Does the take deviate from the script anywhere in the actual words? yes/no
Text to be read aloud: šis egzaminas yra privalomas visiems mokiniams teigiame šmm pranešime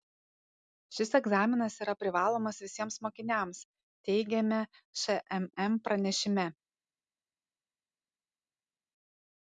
no